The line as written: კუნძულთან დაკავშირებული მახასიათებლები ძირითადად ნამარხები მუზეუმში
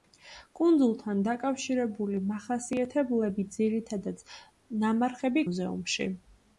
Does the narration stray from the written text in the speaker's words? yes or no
no